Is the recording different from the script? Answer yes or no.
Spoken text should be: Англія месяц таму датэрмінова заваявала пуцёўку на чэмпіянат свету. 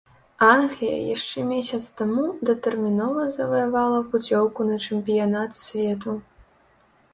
yes